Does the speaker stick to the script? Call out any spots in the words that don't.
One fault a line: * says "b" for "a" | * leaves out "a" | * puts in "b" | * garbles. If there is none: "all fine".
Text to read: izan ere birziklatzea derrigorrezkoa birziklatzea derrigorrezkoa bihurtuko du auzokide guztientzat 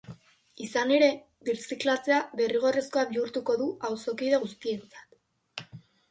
* leaves out "birziklatzea derrigorrezkoa"